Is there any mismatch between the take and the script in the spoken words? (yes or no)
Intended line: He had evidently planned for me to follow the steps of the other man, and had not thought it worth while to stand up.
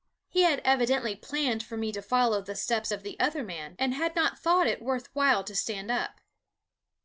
no